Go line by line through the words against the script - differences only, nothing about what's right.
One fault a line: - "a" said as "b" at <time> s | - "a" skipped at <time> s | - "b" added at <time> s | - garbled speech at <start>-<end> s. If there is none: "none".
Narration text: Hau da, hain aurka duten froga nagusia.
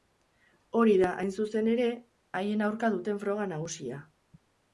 - "Hau" said as "Hori" at 0.8 s
- "zuzen ere haien" added at 1.4 s